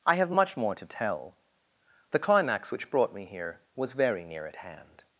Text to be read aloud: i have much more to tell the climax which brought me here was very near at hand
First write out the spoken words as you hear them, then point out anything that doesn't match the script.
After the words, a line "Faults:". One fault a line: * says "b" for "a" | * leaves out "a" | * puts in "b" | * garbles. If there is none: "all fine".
i have much more to tell the climax which brought me here was very near at hand
Faults:
all fine